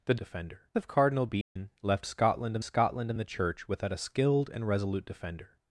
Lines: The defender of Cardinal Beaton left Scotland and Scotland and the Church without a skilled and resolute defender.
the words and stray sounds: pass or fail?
fail